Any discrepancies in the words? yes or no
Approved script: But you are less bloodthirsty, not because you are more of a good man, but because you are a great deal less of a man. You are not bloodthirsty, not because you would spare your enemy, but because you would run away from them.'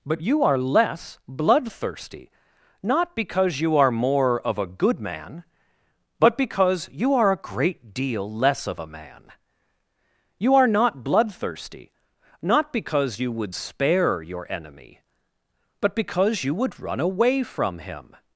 yes